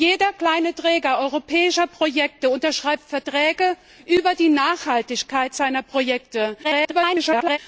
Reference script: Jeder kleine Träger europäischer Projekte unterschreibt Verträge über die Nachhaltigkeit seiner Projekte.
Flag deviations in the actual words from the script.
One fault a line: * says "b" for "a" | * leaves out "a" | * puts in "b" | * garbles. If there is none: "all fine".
* garbles